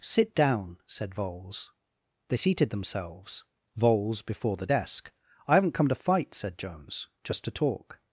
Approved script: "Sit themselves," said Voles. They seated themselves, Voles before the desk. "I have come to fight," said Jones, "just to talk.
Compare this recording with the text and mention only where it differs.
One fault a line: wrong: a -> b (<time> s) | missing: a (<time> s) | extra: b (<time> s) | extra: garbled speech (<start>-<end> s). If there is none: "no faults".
wrong: themselves -> down (0.3 s)
wrong: have -> haven't (5.5 s)